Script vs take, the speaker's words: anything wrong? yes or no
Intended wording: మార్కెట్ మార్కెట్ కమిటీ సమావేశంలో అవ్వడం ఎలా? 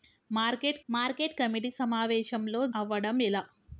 no